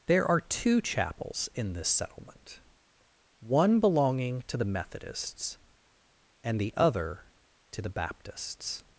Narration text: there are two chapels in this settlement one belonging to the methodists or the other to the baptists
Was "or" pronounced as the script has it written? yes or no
no